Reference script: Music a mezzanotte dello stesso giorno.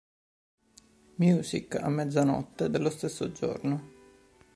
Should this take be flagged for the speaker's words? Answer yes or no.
no